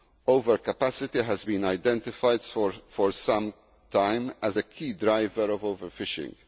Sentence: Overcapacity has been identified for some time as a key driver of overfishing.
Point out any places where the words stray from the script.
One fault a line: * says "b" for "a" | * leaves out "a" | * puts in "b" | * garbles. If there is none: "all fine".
all fine